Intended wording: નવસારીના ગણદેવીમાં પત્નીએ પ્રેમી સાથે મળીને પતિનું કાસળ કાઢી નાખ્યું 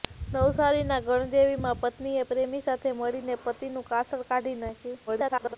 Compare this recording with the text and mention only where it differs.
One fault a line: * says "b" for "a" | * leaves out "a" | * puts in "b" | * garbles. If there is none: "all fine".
* garbles